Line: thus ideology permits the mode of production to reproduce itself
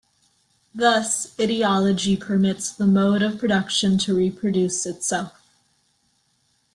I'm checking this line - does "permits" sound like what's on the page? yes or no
yes